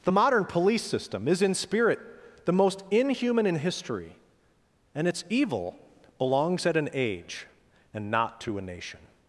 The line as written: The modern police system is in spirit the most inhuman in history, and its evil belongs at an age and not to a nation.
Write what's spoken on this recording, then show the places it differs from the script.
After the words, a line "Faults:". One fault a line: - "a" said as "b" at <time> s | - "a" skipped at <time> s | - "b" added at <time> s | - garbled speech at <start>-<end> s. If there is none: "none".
The modern police system is in spirit the most inhuman in history, and its evil belongs at an age and not to a nation.
Faults:
none